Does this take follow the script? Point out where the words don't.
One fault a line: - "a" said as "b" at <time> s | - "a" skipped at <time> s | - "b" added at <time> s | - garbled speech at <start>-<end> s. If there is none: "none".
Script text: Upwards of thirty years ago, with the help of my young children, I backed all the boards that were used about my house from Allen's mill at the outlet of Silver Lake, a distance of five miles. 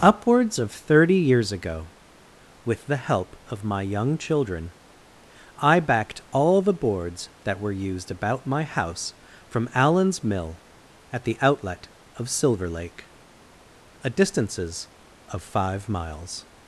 - "distance" said as "distances" at 14.1 s